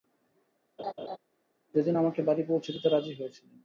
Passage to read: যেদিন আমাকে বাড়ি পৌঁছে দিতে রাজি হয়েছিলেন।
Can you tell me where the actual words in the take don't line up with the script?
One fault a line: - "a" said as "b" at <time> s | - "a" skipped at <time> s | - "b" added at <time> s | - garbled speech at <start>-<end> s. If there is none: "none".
none